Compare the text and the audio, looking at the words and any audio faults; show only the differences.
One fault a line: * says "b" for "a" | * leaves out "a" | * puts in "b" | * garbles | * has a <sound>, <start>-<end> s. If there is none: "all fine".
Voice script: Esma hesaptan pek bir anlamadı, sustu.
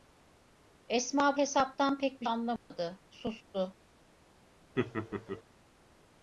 * has a dropout, 2.6-2.7 s
* has a laugh, 4.8-5.4 s